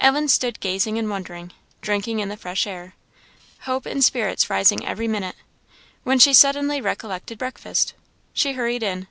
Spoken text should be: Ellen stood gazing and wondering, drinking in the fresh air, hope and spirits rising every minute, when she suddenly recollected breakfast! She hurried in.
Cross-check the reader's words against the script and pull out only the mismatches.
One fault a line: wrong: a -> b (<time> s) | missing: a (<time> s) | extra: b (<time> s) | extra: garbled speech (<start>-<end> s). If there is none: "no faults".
no faults